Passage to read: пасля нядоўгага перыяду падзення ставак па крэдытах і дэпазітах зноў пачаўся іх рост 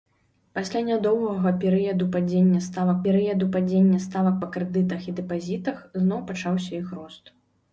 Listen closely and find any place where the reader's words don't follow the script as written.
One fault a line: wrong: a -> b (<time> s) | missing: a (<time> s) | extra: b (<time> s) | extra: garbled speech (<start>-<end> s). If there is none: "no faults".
extra: перыяду падзення ставак (3.1 s)